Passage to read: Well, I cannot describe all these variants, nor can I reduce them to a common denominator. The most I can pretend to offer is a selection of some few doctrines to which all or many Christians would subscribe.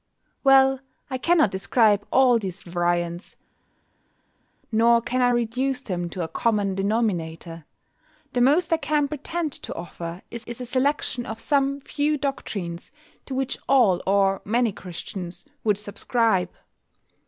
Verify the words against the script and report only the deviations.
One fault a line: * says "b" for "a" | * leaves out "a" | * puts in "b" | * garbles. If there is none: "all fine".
* puts in "is"